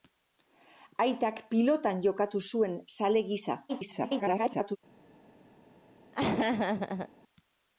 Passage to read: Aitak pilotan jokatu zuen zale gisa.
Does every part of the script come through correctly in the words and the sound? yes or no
no